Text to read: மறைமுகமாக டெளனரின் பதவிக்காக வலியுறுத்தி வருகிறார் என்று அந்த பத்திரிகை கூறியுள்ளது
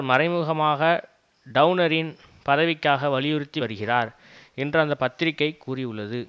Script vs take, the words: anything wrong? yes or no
no